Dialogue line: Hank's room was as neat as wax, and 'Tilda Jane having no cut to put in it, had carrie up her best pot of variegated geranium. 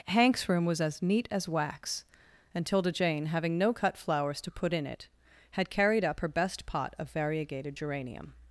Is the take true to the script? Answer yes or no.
no